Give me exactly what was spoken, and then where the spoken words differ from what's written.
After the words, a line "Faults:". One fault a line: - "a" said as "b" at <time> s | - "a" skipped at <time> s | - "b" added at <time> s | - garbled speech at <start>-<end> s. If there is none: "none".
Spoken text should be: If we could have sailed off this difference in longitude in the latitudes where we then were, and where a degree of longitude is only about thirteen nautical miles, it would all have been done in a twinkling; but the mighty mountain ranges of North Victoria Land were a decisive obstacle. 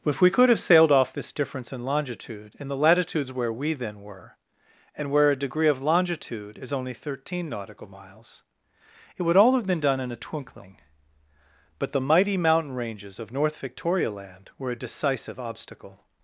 If we could have sailed off this difference in longitude in the latitudes where we then were, and where a degree of longitude is only thirteen nautical miles, it would all have been done in a twinkling; but the mighty mountain ranges of North Victoria Land were a decisive obstacle.
Faults:
- "about" skipped at 6.9 s